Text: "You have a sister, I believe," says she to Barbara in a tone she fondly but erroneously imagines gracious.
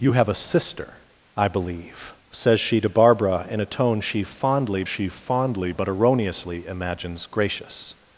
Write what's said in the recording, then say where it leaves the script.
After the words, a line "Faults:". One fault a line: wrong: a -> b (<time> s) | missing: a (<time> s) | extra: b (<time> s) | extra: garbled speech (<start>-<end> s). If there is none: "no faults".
"You have a sister, I believe," says she to Barbara in a tone she fondly she fondly but erroneously imagines gracious.
Faults:
extra: she fondly (4.8 s)